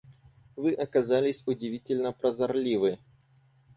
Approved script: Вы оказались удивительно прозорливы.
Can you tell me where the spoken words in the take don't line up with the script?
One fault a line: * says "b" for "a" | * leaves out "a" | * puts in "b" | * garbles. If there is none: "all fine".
all fine